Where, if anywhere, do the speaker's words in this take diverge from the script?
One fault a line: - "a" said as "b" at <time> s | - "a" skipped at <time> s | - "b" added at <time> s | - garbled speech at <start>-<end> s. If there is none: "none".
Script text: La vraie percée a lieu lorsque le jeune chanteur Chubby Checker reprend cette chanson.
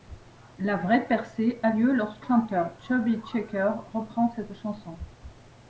- "le jeune" skipped at 2.2 s